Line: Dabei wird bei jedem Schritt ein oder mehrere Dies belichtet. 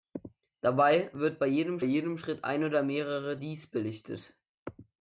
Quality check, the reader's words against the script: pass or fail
fail